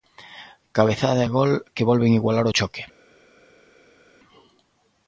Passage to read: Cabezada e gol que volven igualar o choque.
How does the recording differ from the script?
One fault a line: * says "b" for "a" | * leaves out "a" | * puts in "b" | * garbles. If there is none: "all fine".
all fine